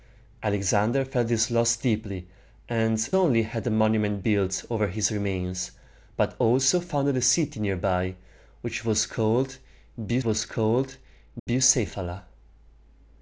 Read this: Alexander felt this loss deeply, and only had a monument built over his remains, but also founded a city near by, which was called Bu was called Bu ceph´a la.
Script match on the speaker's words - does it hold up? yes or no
yes